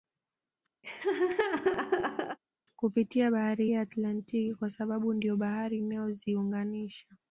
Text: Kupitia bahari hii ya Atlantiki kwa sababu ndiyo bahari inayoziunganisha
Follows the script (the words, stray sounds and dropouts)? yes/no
no